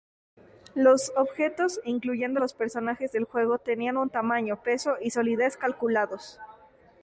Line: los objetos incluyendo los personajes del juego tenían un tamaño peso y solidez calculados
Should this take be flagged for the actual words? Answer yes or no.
no